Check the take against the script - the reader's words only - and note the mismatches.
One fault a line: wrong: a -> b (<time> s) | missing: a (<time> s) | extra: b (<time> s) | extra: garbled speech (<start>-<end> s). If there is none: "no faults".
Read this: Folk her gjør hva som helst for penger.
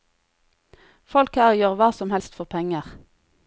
no faults